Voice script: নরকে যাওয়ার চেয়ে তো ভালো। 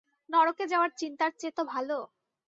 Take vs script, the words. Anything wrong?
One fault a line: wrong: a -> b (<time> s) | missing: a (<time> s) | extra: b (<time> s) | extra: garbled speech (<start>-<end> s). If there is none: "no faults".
extra: চিন্তার (1.0 s)